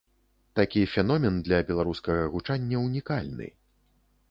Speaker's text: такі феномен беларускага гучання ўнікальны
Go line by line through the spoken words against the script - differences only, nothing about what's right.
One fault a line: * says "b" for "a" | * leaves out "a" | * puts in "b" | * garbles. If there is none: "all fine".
* puts in "для"